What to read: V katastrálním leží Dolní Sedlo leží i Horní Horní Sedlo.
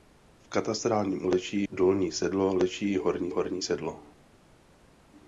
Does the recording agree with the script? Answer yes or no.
yes